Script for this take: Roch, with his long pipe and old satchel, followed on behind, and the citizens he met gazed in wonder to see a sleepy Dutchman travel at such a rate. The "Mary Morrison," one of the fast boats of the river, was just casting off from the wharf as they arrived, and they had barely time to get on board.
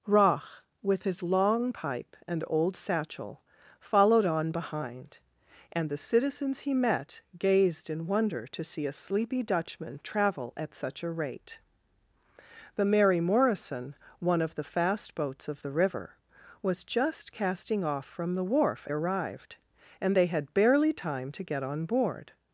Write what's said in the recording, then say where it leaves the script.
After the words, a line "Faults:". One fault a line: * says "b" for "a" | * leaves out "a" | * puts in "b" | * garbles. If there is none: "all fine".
Roch, with his long pipe and old satchel, followed on behind, and the citizens he met gazed in wonder to see a sleepy Dutchman travel at such a rate. The "Mary Morrison," one of the fast boats of the river, was just casting off from the wharf arrived, and they had barely time to get on board.
Faults:
* leaves out "as they"